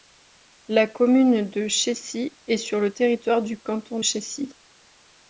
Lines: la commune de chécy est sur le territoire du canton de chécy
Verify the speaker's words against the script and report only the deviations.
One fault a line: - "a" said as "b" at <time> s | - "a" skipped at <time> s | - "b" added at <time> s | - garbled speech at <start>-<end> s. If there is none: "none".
- "de" skipped at 4.0 s